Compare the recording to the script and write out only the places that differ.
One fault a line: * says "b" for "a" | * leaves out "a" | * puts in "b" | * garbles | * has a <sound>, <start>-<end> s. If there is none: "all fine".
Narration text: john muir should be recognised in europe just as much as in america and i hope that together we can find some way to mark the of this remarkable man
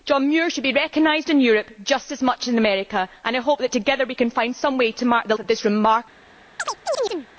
* has a chirp, 6.6-7.3 s